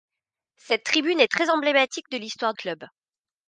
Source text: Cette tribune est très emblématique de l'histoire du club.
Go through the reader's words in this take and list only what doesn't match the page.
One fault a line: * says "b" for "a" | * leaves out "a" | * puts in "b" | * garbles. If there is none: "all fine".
* leaves out "du"